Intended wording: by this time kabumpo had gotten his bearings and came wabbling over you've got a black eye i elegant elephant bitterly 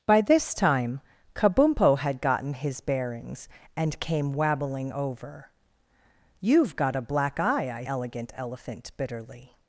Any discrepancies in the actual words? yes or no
no